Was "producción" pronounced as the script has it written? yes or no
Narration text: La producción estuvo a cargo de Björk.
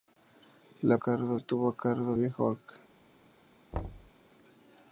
no